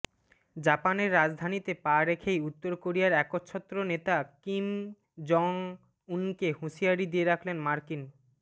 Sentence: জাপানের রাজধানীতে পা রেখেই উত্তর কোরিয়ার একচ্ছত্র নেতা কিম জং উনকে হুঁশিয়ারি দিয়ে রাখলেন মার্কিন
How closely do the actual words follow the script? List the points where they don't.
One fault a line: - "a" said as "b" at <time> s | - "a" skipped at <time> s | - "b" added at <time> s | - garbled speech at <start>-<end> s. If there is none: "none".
none